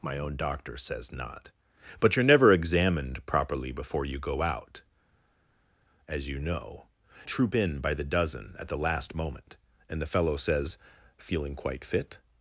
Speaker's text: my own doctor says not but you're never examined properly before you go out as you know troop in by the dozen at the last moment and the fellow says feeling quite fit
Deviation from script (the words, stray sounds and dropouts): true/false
false